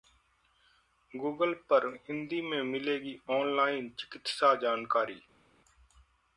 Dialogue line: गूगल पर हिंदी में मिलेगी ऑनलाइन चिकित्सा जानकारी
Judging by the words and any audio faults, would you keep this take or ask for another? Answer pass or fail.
pass